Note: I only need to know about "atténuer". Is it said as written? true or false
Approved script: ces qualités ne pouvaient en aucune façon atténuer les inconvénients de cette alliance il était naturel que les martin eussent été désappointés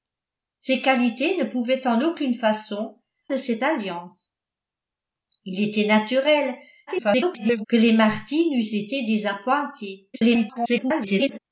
false